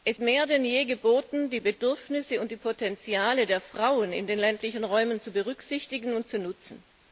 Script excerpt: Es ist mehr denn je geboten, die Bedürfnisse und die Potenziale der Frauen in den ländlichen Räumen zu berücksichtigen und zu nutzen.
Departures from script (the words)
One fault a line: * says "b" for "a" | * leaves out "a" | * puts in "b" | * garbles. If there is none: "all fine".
* leaves out "ist"